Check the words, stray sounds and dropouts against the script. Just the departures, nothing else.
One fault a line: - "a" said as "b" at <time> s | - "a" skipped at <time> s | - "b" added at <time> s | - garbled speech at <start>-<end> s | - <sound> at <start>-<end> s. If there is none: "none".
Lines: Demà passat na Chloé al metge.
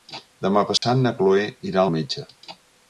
- dropout at 0.8-0.8 s
- "irà" added at 1.7 s